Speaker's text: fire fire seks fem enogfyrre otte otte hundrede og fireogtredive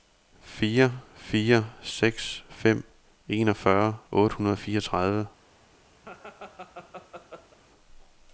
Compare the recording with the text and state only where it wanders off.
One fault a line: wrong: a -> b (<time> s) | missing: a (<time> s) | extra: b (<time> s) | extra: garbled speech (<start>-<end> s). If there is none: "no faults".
missing: otte (4.4 s)